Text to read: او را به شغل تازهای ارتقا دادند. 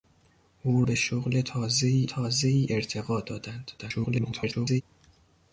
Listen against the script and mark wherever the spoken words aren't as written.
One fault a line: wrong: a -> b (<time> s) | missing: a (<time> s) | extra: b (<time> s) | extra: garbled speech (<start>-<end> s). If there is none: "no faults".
missing: را (0.8 s)
extra: تازهای (2.0 s)
extra: garbled speech (3.8-4.8 s)